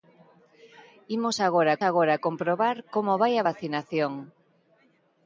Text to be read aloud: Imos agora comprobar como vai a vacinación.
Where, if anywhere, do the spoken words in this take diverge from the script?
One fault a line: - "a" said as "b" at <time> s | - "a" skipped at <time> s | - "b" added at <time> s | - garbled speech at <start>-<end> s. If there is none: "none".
- "agora" added at 1.9 s